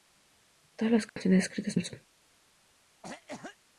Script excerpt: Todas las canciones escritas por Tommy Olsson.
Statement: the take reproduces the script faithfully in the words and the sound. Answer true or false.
false